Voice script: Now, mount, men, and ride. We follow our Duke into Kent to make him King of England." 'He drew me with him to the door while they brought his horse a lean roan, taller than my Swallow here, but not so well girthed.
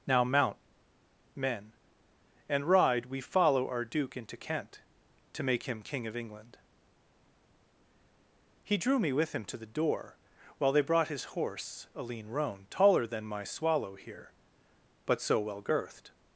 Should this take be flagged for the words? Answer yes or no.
yes